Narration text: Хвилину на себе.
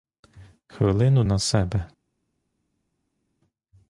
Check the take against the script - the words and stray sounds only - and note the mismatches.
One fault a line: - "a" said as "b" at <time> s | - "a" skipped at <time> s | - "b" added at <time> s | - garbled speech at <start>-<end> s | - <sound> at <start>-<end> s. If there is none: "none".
none